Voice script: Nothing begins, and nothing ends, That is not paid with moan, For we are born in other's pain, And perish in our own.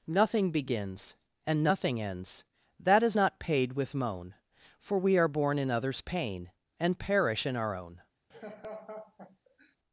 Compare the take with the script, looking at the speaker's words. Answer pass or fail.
pass